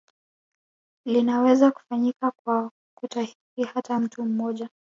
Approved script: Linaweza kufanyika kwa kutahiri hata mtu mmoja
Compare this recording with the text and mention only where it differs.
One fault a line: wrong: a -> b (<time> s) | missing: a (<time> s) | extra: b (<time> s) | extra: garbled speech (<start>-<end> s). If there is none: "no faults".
no faults